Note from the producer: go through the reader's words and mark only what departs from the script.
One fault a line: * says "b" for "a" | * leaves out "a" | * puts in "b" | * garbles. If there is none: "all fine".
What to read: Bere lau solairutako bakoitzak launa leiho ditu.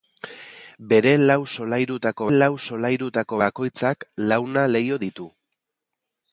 * puts in "lau solairutako"